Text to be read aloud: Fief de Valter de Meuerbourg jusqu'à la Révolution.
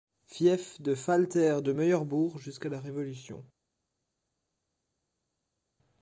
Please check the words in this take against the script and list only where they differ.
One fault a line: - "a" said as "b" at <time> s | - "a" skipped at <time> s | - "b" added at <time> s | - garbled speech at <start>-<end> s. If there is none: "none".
none